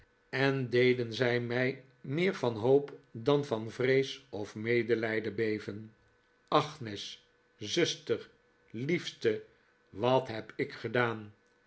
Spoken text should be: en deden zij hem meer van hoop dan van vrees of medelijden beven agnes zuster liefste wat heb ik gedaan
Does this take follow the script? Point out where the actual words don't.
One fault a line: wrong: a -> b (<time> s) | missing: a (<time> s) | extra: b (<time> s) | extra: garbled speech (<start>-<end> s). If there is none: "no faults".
wrong: hem -> mij (1.4 s)